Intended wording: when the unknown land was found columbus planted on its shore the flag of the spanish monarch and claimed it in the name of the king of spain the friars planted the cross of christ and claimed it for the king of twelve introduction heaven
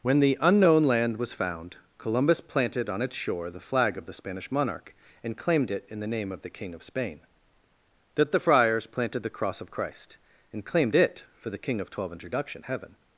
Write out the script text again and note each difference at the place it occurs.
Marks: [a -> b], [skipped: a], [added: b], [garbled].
when the unknown land was found columbus planted on its shore the flag of the spanish monarch and claimed it in the name of the king of spain [added: that] the friars planted the cross of christ and claimed it for the king of twelve introduction heaven